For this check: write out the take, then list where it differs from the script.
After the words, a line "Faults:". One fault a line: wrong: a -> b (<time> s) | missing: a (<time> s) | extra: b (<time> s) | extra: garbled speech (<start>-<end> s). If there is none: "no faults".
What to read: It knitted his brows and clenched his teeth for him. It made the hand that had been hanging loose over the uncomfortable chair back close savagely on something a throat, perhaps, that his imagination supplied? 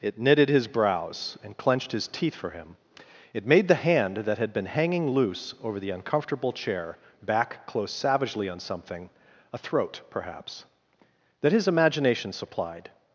It knitted his brows and clenched his teeth for him. It made the hand that had been hanging loose over the uncomfortable chair back close savagely on something a throat, perhaps, that his imagination supplied?
Faults:
no faults